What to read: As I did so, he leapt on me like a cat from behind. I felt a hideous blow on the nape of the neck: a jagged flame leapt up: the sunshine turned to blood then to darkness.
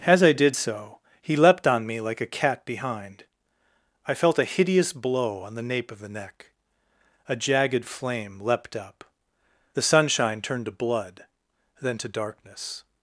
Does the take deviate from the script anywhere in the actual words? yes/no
yes